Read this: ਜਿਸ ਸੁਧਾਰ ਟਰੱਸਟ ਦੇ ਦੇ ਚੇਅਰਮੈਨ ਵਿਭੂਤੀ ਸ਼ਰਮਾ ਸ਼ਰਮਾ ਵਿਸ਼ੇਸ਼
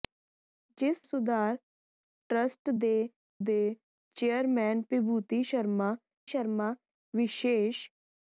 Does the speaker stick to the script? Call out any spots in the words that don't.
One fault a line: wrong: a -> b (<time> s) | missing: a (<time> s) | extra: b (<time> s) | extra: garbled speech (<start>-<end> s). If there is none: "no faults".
no faults